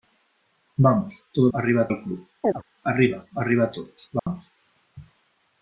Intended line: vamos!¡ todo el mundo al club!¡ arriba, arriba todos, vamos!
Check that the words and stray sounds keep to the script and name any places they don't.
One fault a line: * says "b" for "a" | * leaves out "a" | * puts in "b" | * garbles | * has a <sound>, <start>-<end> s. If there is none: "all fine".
* says "arriba" for "mundo"
* has a chirp, 2.4-2.6 s
* has a dropout, 4.2-4.3 s